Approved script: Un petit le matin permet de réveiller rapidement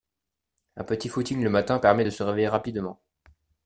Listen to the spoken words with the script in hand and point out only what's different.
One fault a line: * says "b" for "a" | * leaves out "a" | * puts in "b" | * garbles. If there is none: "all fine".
* puts in "footing"
* puts in "se"